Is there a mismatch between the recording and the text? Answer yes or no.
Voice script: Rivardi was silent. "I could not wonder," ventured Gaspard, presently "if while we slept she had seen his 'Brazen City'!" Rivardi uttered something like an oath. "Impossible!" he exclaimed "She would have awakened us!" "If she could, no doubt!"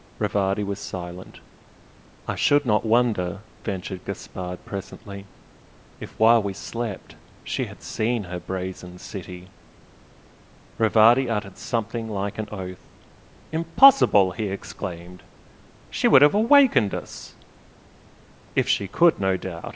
yes